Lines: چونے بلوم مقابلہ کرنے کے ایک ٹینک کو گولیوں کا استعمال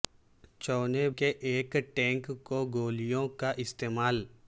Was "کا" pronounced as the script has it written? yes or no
yes